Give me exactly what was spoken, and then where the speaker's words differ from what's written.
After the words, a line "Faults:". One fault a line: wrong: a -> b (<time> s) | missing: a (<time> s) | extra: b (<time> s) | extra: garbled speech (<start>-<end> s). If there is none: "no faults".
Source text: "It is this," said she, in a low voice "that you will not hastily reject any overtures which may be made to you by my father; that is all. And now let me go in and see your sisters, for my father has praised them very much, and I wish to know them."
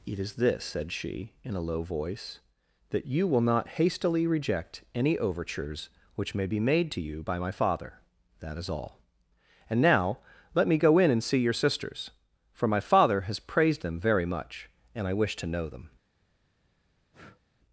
"It is this," said she, in a low voice "that you will not hastily reject any overtures which may be made to you by my father; that is all. And now let me go in and see your sisters, for my father has praised them very much, and I wish to know them."
Faults:
no faults